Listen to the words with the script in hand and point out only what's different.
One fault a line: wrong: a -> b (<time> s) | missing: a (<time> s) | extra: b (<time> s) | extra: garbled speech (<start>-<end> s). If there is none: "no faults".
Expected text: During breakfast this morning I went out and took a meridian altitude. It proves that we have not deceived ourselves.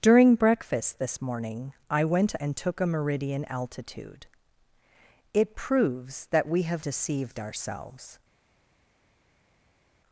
missing: out (2.3 s)
missing: not (6.9 s)